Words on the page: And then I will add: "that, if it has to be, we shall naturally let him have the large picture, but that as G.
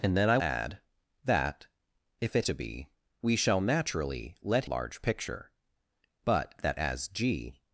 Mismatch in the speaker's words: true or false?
true